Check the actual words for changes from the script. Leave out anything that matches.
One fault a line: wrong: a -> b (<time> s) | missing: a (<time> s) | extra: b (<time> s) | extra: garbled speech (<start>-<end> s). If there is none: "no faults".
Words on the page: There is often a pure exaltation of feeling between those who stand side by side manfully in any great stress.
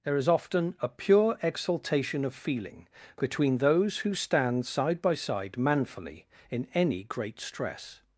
no faults